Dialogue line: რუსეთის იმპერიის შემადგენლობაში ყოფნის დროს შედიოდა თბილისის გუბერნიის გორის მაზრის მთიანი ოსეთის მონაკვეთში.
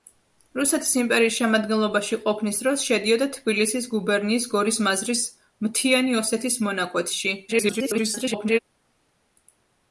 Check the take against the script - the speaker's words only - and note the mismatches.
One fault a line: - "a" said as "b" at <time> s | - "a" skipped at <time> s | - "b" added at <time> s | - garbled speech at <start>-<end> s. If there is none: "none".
- garbled speech at 7.5-8.6 s